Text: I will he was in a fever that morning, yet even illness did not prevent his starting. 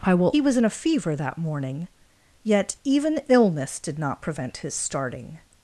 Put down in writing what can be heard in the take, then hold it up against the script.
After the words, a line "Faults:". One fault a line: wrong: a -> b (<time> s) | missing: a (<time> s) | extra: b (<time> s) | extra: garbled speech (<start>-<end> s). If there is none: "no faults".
I will he was in a fever that morning, yet even illness did not prevent his starting.
Faults:
no faults